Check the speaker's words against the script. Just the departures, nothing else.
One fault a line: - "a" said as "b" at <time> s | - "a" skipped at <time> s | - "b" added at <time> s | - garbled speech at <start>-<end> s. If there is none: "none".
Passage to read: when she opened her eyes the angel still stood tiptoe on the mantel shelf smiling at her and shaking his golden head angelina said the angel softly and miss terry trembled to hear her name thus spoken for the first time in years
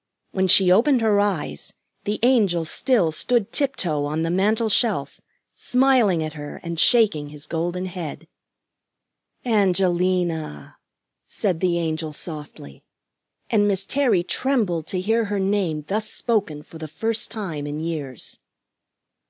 none